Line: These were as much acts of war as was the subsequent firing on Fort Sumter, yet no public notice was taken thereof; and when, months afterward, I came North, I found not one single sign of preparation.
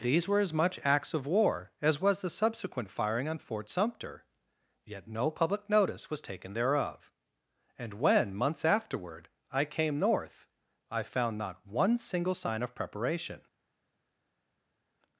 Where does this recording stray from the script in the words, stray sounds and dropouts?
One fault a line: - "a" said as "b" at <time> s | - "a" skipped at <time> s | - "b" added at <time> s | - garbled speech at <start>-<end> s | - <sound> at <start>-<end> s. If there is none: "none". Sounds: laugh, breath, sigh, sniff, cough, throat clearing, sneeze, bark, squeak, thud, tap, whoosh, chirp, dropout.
none